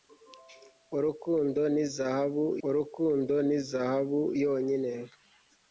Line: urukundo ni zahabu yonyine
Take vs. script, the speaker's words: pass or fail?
fail